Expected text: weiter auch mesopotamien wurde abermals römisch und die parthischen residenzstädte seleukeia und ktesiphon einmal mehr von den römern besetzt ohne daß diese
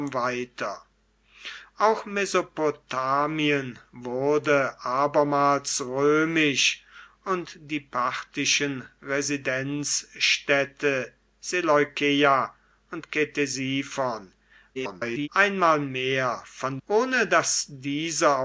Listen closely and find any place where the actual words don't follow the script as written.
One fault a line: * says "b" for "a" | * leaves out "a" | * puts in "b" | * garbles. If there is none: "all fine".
* garbles
* leaves out "den römern besetzt"